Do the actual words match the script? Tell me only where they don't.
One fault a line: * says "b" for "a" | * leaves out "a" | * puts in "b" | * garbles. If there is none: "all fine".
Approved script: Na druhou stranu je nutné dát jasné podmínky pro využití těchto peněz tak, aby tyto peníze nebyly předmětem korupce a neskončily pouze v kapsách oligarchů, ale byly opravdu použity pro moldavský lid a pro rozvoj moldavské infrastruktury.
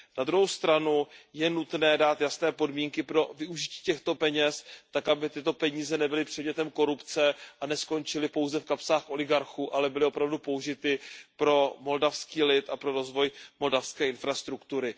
all fine